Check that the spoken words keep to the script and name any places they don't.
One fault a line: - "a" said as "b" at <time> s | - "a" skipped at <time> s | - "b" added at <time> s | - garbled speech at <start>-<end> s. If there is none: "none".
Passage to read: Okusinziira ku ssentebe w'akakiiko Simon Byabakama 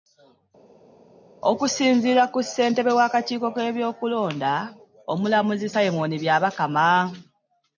- "k'ebyokulonda Omulamuzi" added at 3.6 s